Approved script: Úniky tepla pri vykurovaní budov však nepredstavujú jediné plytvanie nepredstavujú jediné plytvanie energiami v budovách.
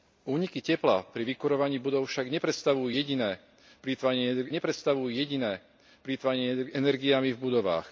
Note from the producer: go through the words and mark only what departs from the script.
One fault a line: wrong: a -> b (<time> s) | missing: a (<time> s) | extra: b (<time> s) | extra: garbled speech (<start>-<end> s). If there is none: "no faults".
no faults